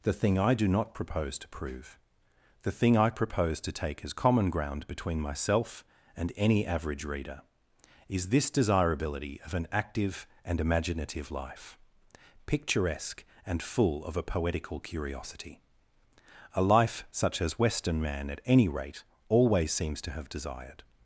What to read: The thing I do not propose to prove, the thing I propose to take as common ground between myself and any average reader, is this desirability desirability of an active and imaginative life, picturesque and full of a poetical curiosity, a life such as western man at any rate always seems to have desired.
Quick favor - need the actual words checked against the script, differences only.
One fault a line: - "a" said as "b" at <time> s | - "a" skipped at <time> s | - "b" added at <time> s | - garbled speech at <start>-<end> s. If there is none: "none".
- "desirability" skipped at 9.4 s